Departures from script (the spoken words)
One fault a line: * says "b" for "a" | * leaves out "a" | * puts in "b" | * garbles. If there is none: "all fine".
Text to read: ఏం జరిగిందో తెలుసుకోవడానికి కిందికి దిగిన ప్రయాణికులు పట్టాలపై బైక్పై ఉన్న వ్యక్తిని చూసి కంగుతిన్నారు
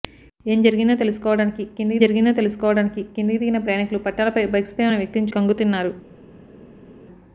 * puts in "జరిగిందో తెలుసుకోవడానికి కిందికి"
* leaves out "చూసి"